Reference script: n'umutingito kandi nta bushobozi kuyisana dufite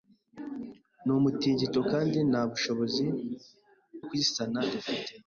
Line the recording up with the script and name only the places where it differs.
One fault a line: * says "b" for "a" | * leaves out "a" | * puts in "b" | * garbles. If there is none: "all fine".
all fine